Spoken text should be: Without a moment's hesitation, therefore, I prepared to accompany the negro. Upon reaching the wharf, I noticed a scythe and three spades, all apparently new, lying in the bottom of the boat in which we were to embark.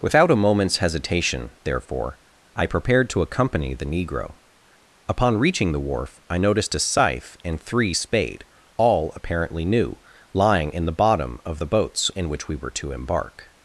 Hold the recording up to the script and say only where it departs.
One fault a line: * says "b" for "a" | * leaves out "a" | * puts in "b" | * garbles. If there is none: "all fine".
* says "spade" for "spades"
* says "boats" for "boat"